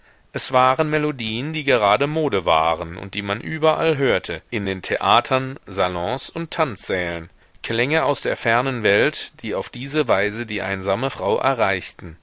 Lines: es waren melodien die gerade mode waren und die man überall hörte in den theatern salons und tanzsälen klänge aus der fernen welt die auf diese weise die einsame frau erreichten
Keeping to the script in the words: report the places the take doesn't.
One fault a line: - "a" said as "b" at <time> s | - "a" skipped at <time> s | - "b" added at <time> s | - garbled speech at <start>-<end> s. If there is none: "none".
none